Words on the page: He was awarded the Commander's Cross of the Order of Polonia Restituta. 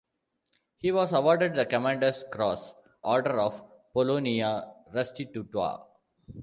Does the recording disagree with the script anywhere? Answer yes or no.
yes